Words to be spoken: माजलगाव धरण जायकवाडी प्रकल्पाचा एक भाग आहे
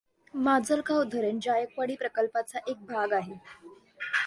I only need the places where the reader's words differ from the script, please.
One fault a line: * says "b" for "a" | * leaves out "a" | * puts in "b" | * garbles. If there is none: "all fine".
all fine